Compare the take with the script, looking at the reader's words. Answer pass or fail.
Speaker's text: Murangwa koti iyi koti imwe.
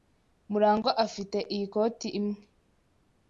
fail